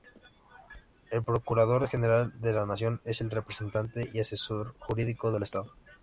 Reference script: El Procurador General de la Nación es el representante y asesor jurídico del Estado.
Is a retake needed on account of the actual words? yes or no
no